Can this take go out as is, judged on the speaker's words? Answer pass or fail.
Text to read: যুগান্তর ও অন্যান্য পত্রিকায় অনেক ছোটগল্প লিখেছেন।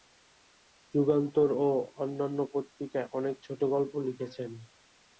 pass